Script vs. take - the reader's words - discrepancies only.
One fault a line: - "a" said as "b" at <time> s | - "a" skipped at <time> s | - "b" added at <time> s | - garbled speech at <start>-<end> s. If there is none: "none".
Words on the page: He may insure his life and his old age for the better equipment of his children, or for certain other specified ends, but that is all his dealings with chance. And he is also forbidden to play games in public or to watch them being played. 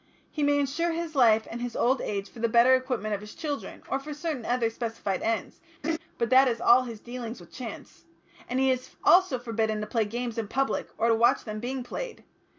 none